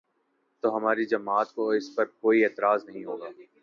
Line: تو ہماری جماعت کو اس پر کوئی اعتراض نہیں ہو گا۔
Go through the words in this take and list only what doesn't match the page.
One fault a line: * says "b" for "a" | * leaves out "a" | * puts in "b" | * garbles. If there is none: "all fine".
all fine